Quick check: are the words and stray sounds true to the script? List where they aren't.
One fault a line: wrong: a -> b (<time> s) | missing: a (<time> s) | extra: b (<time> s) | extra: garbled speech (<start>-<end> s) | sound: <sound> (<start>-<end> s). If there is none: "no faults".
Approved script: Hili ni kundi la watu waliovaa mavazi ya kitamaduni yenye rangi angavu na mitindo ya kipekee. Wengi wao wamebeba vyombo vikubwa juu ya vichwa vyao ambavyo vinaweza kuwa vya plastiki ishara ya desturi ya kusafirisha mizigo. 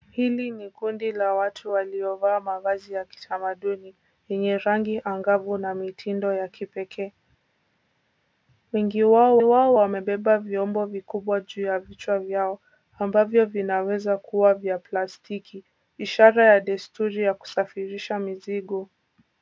extra: wao (9.4 s)